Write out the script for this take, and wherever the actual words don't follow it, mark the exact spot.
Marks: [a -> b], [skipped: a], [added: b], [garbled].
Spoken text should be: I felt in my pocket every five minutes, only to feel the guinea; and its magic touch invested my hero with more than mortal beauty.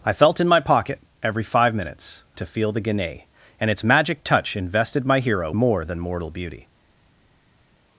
I felt in my pocket every five minutes, [skipped: only] to feel the guinea; and its magic touch invested my hero [skipped: with] more than mortal beauty.